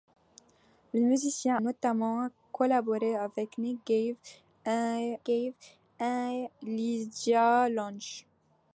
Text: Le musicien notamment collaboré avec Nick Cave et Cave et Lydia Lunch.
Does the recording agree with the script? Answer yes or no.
yes